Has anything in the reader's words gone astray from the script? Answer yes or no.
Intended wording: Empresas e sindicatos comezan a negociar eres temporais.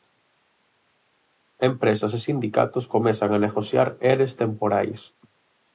no